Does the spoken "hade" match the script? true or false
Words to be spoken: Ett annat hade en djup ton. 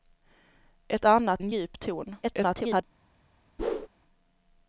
false